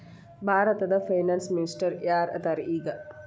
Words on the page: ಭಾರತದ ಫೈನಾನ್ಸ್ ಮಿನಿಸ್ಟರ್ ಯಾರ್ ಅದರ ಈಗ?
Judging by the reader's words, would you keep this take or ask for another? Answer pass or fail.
pass